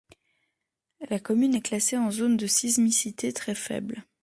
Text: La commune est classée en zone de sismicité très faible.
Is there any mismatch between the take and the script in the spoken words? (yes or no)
no